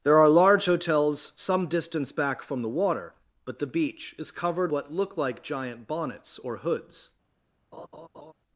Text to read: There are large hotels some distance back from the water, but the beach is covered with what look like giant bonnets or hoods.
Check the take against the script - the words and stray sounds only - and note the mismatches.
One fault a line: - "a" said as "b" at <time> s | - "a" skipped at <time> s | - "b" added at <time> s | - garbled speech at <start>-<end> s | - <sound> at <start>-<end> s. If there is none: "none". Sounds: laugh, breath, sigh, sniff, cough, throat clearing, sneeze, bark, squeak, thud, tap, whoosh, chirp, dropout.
- "with" skipped at 4.7 s
- laugh at 7.7-8.3 s